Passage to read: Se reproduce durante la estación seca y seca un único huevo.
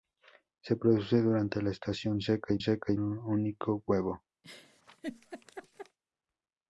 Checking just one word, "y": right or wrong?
right